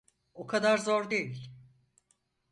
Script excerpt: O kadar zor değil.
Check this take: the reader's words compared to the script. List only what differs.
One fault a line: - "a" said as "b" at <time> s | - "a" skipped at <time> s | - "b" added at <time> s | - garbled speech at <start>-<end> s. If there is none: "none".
none